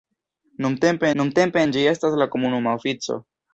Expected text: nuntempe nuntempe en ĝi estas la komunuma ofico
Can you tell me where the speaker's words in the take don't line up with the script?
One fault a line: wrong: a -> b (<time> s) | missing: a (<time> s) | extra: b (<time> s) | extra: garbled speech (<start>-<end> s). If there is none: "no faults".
no faults